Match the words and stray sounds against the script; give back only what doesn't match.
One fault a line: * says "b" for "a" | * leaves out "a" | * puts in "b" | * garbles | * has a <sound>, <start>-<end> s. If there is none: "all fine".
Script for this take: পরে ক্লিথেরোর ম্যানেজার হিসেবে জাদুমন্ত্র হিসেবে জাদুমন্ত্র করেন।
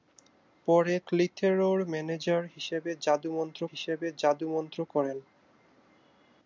all fine